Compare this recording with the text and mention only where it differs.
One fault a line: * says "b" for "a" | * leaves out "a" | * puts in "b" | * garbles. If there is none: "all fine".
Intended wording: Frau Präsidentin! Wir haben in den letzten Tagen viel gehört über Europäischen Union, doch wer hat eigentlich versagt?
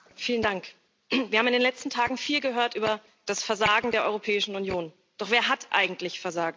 * puts in "das Versagen der"